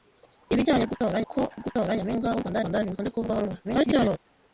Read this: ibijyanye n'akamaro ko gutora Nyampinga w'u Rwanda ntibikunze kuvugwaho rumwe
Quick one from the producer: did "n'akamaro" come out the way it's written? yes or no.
no